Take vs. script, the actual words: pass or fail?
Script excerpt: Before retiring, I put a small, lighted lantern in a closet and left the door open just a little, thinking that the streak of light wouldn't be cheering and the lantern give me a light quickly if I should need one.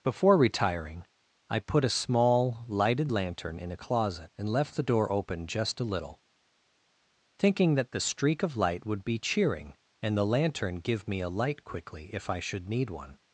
fail